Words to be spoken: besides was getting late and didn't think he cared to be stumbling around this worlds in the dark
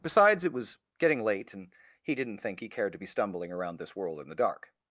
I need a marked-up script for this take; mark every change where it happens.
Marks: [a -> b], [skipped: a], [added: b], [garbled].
besides [added: it] was getting late and [added: he] didn't think he cared to be stumbling around this [worlds -> world] in the dark